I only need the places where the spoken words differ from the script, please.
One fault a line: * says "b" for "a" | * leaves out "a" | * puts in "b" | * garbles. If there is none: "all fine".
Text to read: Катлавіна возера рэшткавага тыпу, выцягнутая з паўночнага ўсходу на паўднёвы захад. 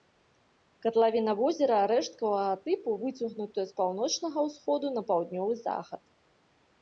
all fine